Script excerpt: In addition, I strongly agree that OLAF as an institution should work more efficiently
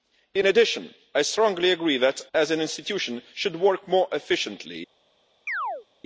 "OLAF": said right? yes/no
no